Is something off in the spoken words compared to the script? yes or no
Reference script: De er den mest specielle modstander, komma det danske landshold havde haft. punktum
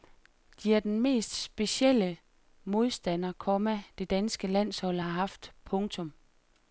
yes